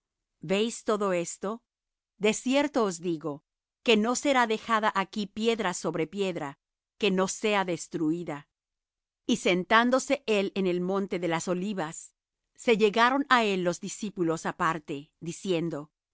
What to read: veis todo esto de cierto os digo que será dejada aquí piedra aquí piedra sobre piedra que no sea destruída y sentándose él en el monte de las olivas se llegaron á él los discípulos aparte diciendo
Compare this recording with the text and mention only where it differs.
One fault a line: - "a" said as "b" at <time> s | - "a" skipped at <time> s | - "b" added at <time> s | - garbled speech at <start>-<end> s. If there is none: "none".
- "no" added at 4.0 s
- "aquí piedra" skipped at 5.7 s